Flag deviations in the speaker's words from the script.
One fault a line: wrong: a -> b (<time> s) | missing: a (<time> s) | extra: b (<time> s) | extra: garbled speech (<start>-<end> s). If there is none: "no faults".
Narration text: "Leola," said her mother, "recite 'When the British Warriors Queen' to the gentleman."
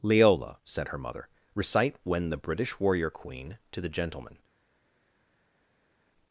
wrong: Warriors -> Warrior (2.8 s)